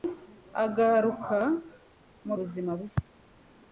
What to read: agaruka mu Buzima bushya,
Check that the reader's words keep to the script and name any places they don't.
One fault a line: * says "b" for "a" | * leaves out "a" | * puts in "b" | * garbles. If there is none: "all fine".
all fine